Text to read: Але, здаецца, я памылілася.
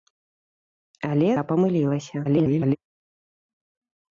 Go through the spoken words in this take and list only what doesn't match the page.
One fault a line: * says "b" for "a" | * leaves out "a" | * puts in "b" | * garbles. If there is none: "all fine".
* leaves out "здаецца"
* garbles